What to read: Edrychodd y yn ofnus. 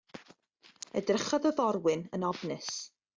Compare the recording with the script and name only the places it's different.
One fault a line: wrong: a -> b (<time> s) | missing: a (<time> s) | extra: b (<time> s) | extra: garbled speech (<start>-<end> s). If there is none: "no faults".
extra: forwyn (1.6 s)